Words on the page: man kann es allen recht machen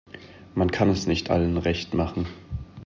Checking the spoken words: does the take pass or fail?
fail